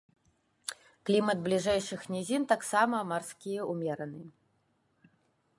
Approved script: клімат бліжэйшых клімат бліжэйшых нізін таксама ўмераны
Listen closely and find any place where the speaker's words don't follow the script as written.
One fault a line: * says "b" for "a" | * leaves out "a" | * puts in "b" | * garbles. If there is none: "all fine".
* leaves out "клімат бліжэйшых"
* puts in "марскі"